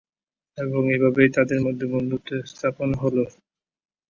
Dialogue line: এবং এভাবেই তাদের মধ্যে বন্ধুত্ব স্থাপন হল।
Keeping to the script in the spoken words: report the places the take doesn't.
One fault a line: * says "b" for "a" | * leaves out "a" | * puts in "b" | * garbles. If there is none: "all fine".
all fine